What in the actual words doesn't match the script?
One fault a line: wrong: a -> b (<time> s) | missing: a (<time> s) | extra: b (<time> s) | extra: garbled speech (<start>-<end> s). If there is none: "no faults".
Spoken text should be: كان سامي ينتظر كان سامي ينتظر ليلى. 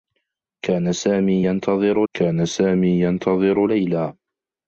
no faults